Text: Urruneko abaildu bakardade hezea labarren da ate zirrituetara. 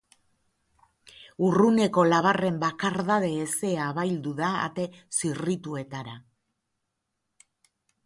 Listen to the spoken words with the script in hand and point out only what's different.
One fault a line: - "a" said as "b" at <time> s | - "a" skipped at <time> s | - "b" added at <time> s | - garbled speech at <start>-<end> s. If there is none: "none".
- "abaildu" said as "labarren" at 2.1 s
- "labarren" said as "abaildu" at 3.9 s